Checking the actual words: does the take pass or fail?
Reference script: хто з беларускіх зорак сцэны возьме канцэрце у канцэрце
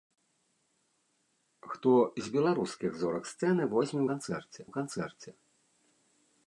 pass